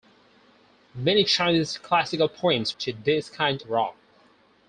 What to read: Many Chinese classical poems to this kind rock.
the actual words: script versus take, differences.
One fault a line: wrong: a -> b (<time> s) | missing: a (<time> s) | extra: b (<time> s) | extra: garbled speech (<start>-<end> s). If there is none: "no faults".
no faults